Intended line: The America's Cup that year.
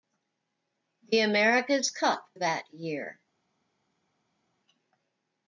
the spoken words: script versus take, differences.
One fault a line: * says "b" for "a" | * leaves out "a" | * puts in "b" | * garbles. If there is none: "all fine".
all fine